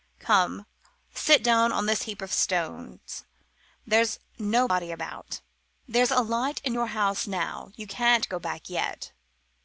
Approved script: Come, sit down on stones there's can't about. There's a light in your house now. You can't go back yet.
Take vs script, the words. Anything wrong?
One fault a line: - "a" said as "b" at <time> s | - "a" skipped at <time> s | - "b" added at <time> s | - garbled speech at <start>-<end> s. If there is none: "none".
- "this heap of" added at 1.9 s
- "can't" said as "nobody" at 4.4 s